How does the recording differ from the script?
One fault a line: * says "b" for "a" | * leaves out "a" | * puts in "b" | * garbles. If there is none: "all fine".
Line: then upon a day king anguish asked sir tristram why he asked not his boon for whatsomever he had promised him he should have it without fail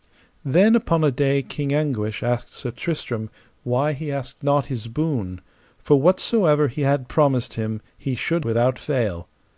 * leaves out "have it"